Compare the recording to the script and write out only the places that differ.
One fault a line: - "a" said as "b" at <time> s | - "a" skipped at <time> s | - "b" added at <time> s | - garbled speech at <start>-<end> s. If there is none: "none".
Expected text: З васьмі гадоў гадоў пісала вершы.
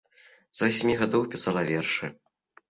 - "гадоў" skipped at 1.3 s